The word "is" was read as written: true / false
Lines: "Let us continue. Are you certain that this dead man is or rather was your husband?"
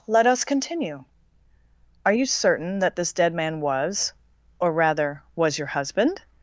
false